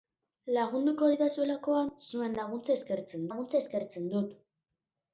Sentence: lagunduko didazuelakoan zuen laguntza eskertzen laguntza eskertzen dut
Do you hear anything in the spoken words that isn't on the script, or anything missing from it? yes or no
no